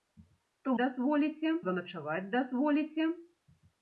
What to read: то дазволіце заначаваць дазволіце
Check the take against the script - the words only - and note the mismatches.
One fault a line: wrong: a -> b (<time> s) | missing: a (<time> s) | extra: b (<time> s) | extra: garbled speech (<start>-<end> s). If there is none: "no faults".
no faults